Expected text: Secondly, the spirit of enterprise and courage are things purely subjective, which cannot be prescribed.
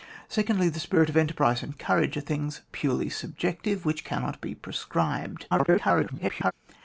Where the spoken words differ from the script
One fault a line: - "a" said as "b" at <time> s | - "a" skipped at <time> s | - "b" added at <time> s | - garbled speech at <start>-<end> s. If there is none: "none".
- garbled speech at 5.5-6.5 s